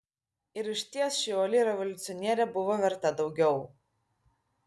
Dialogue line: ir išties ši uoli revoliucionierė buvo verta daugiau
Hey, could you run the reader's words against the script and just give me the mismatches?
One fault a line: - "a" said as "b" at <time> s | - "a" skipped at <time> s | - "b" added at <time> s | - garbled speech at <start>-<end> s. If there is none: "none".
none